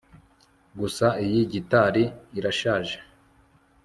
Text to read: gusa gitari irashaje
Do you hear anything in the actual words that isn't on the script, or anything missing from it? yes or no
yes